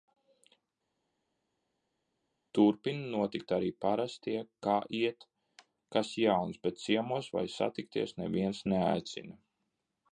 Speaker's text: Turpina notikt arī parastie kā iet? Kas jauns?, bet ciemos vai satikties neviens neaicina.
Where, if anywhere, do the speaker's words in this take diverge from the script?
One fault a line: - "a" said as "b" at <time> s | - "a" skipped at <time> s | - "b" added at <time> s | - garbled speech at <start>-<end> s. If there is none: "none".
none